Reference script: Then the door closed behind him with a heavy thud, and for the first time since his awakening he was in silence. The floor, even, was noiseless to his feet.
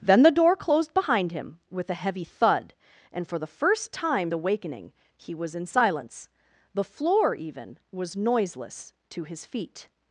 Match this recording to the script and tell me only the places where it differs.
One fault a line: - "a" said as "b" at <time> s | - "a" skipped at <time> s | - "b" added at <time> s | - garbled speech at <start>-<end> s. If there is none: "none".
- "since his" skipped at 4.3 s